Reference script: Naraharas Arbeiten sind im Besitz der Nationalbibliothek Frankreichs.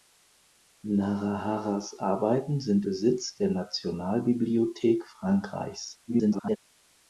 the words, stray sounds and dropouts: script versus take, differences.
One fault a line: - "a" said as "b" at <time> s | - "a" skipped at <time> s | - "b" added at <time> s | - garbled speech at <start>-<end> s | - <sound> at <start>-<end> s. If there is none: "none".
- "im" skipped at 2.9 s
- garbled speech at 6.1-6.6 s